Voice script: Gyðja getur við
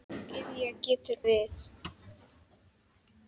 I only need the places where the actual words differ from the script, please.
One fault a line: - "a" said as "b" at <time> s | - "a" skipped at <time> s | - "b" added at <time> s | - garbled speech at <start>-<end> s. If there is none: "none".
none